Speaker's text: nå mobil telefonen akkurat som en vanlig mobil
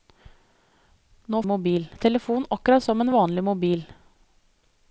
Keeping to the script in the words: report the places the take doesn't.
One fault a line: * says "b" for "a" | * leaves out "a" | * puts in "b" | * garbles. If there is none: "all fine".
all fine